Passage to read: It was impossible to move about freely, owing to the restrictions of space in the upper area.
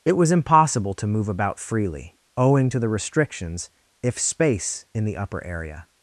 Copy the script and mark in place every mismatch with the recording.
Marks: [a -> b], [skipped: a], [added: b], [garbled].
It was impossible to move about freely, owing to the restrictions [of -> if] space in the upper area.